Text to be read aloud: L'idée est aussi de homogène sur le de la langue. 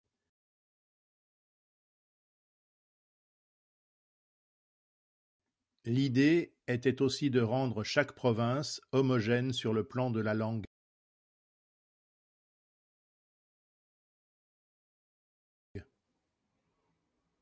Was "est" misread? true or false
true